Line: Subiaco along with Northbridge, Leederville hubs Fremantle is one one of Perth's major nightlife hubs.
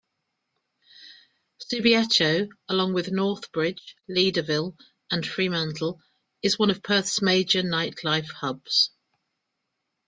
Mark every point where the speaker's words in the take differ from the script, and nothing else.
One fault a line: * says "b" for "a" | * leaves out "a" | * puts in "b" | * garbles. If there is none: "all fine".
* says "and" for "hubs"
* leaves out "one"